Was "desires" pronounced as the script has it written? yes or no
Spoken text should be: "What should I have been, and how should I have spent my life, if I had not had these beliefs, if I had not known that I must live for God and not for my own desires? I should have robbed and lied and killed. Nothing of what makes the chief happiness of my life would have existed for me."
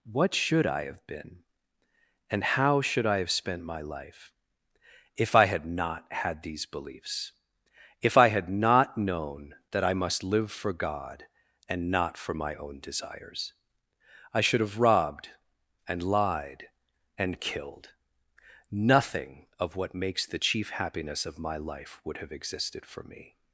yes